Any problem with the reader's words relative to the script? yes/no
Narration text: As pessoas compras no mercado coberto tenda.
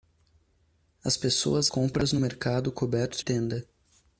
no